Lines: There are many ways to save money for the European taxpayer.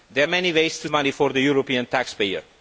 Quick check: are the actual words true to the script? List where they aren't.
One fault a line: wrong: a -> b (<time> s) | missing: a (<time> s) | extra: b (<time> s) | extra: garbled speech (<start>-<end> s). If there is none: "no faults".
missing: are (0.3 s)
missing: save (0.9 s)